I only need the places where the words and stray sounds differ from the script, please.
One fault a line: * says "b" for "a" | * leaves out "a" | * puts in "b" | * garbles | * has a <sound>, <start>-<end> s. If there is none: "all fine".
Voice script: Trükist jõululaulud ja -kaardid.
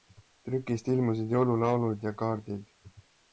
* puts in "ilmusid"